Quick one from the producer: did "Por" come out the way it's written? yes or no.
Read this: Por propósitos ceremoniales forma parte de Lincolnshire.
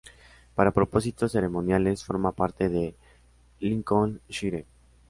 no